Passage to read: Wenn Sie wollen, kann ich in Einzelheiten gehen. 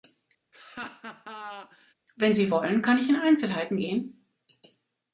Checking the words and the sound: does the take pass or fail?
fail